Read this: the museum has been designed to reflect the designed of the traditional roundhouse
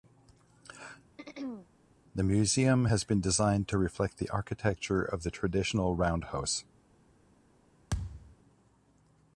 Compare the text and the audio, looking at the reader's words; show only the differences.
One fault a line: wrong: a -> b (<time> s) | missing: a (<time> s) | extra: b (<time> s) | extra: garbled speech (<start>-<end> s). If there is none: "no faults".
wrong: designed -> architecture (4.3 s)